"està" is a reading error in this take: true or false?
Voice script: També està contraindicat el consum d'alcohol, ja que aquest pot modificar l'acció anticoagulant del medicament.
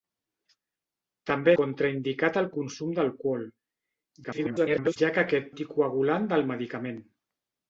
true